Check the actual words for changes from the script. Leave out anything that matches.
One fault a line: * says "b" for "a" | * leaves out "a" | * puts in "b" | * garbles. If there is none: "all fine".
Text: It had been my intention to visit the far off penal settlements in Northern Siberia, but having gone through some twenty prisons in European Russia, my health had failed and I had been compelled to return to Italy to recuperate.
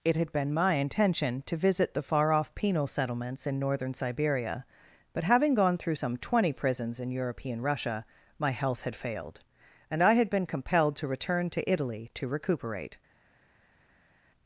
all fine